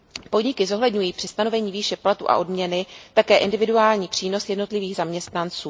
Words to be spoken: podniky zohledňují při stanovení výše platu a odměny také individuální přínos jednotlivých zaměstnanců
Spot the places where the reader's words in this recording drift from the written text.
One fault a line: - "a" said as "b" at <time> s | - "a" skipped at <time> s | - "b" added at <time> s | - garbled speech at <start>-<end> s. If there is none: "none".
none